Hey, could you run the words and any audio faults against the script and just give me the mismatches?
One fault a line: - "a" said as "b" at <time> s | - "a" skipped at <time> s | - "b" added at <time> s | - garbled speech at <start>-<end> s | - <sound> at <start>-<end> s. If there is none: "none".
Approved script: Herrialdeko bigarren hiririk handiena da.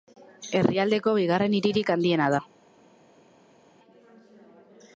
none